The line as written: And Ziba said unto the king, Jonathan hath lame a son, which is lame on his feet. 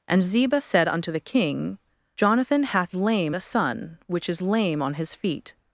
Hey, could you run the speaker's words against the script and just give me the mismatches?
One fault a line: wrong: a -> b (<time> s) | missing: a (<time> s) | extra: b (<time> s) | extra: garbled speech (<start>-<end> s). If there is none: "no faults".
no faults